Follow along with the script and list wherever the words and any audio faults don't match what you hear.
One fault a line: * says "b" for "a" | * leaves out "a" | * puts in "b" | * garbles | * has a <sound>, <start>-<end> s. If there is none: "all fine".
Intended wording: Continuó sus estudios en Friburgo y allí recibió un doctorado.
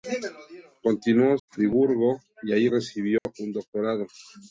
* leaves out "sus estudios en"
* has a dropout, 3.2-3.3 s